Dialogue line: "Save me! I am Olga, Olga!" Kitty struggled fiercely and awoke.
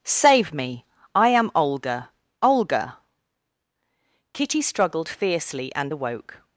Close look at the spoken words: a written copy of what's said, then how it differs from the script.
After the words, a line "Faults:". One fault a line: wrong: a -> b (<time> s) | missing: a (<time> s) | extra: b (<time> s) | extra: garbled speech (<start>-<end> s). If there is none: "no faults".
"Save me! I am Olga, Olga!" Kitty struggled fiercely and awoke.
Faults:
no faults